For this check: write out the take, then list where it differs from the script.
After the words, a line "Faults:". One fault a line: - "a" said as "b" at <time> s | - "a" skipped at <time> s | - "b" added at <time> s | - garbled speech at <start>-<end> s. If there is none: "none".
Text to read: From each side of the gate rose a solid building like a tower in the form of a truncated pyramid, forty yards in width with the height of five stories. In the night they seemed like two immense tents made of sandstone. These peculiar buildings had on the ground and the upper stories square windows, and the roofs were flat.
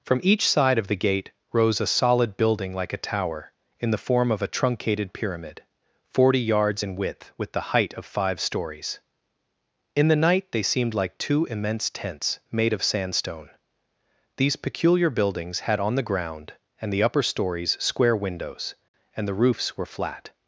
From each side of the gate rose a solid building like a tower in the form of a truncated pyramid, forty yards in width with the height of five stories. In the night they seemed like two immense tents made of sandstone. These peculiar buildings had on the ground and the upper stories square windows, and the roofs were flat.
Faults:
none